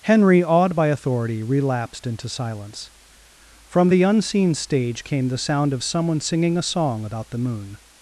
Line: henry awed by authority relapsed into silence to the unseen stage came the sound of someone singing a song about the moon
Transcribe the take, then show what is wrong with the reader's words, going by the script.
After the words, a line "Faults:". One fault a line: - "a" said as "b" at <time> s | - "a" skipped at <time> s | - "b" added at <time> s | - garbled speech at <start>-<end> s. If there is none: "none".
henry awed by authority relapsed into silence from the unseen stage came the sound of someone singing a song about the moon
Faults:
- "to" said as "from" at 3.7 s